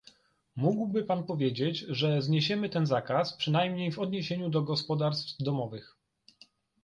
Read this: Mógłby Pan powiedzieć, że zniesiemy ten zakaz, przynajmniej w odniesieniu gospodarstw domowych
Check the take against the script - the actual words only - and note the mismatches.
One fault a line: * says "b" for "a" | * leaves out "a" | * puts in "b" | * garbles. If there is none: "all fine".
* puts in "do"